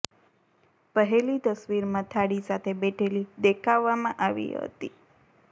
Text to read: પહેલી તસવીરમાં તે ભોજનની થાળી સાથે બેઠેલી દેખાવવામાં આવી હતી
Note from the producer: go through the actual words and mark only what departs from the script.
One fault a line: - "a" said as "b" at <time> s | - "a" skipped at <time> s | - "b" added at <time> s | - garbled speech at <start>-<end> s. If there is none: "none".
- "તે ભોજનની" skipped at 2.1 s